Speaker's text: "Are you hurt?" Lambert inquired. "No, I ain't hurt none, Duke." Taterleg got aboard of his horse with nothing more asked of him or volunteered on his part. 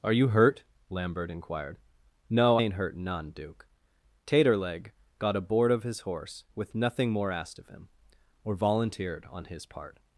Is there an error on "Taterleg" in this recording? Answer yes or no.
no